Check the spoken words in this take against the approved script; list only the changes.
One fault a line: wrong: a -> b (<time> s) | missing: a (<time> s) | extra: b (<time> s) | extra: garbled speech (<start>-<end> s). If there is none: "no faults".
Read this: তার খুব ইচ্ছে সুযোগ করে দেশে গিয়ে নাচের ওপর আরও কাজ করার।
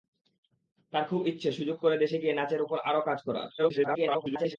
extra: garbled speech (3.6-4.6 s)